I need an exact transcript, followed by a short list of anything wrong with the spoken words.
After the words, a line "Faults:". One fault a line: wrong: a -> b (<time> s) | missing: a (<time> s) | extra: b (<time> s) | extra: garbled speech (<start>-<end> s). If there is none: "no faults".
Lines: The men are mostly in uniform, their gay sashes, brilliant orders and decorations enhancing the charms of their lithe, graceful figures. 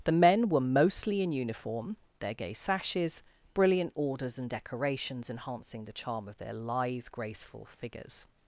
The men were mostly in uniform, their gay sashes, brilliant orders and decorations enhancing the charm of their lithe, graceful figures.
Faults:
wrong: are -> were (0.5 s)
wrong: charms -> charm (5.9 s)